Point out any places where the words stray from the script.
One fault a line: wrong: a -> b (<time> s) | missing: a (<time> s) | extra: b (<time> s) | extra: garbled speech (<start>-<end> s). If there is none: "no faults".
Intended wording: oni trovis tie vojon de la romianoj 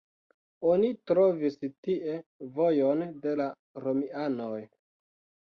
no faults